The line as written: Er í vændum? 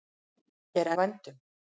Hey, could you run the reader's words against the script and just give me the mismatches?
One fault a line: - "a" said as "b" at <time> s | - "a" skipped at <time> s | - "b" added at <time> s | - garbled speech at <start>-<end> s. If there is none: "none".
none